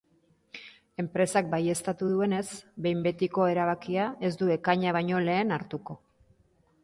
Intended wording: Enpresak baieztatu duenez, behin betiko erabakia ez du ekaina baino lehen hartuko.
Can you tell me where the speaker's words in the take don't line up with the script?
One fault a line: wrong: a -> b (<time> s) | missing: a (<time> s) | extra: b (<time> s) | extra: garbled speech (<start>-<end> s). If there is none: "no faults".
no faults